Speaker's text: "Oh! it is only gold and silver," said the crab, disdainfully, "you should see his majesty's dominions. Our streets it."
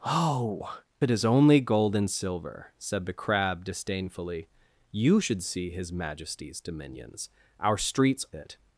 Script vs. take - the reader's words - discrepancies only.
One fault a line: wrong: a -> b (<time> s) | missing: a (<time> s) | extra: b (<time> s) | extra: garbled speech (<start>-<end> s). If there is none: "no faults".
no faults